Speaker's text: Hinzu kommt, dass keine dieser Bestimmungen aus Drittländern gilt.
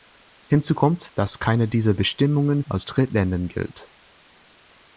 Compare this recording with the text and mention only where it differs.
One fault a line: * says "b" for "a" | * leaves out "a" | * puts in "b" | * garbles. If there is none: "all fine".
all fine